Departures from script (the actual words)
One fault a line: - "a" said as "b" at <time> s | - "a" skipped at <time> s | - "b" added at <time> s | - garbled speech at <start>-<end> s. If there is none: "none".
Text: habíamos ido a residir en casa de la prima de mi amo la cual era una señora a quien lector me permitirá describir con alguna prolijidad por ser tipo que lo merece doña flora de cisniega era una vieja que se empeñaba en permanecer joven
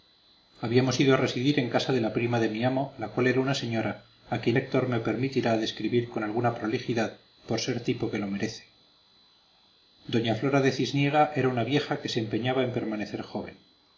none